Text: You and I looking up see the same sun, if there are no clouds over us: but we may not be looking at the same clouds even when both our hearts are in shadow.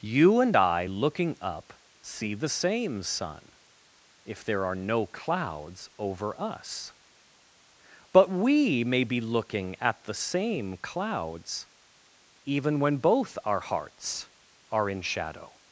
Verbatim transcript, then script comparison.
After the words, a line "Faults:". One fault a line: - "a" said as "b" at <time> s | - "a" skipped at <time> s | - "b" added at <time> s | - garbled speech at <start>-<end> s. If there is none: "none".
You and I looking up see the same sun, if there are no clouds over us: but we may be looking at the same clouds even when both our hearts are in shadow.
Faults:
- "not" skipped at 9.0 s